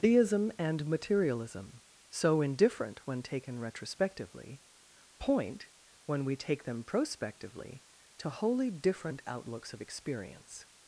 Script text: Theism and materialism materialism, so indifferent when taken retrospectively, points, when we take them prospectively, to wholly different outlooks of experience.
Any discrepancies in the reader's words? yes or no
yes